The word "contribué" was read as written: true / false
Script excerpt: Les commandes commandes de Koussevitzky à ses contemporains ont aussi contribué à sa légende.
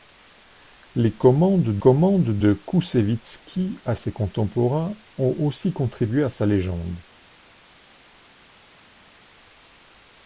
true